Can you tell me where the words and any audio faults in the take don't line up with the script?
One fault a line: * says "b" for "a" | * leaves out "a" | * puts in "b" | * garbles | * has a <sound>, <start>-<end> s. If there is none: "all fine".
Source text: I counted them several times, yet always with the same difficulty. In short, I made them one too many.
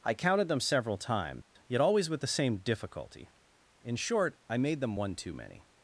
* has a dropout, 1.4-1.6 s